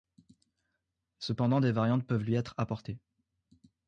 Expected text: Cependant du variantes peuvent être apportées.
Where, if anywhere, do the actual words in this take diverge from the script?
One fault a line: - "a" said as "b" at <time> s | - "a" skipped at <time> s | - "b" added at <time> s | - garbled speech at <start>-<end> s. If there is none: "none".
- "du" said as "des" at 1.6 s
- "lui" added at 2.2 s